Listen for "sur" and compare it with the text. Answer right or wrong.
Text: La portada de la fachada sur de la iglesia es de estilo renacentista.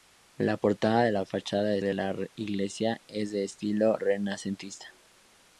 wrong